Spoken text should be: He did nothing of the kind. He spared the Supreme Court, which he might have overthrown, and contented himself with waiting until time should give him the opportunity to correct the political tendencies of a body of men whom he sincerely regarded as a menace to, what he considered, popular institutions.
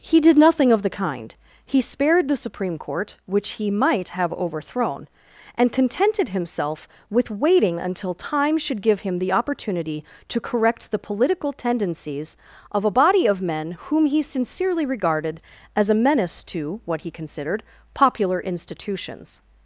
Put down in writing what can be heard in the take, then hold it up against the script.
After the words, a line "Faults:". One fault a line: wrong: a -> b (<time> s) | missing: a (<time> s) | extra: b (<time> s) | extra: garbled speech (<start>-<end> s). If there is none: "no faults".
He did nothing of the kind. He spared the Supreme Court, which he might have overthrown, and contented himself with waiting until time should give him the opportunity to correct the political tendencies of a body of men whom he sincerely regarded as a menace to, what he considered, popular institutions.
Faults:
no faults